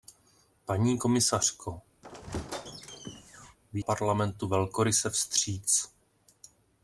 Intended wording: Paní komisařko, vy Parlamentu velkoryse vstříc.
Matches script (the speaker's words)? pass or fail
pass